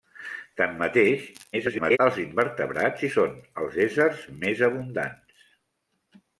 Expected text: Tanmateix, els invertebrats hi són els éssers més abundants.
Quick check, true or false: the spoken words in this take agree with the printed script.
false